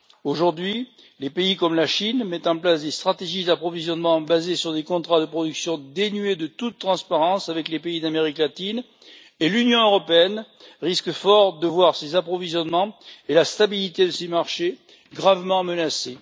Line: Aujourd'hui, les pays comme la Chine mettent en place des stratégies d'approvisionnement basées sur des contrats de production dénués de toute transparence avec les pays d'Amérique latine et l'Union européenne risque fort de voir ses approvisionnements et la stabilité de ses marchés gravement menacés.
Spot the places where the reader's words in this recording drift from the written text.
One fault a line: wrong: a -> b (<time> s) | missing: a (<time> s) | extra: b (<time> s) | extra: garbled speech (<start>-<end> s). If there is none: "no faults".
no faults